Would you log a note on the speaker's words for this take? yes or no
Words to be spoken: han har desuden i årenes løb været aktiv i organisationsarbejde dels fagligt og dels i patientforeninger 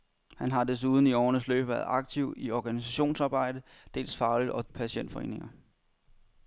yes